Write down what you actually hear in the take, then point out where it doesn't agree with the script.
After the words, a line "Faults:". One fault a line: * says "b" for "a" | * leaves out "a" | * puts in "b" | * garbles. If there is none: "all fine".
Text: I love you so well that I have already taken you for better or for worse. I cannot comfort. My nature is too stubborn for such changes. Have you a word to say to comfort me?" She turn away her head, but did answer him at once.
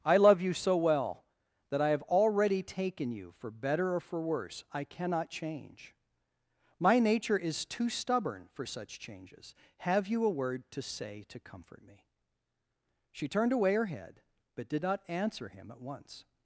I love you so well that I have already taken you for better or for worse. I cannot change. My nature is too stubborn for such changes. Have you a word to say to comfort me?" She turned away her head, but did not answer him at once.
Faults:
* says "change" for "comfort"
* says "turned" for "turn"
* puts in "not"